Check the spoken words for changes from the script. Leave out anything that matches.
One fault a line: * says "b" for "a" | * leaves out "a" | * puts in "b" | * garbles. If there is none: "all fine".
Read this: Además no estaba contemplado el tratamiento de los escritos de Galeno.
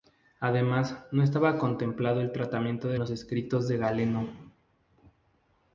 all fine